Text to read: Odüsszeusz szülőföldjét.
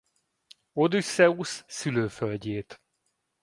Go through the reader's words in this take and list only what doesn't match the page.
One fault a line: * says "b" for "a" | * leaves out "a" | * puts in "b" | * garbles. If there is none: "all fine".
all fine